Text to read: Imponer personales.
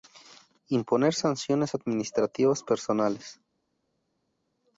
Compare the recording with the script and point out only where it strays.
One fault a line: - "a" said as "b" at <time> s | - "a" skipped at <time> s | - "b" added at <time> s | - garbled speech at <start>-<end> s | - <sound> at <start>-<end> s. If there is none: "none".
- "sanciones administrativas" added at 1.1 s